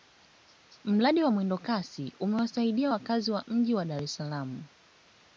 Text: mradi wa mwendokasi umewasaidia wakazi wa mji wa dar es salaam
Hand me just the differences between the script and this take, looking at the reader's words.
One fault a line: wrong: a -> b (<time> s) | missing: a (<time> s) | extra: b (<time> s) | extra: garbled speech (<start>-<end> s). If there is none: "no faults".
no faults